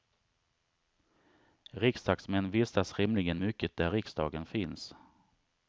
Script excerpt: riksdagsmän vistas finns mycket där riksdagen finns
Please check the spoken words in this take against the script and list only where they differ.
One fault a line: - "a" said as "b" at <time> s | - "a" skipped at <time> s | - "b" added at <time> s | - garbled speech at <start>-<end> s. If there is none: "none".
- "finns" said as "rimligen" at 3.0 s